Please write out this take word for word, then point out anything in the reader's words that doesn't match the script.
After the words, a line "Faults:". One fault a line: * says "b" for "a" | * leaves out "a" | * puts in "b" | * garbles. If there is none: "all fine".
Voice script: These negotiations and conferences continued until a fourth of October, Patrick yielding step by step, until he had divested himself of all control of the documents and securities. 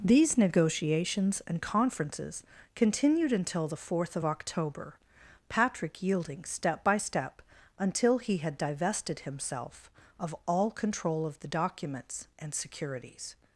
These negotiations and conferences continued until the fourth of October, Patrick yielding step by step, until he had divested himself of all control of the documents and securities.
Faults:
* says "the" for "a"